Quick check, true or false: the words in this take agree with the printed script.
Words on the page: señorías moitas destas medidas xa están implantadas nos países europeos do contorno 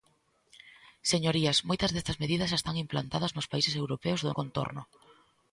true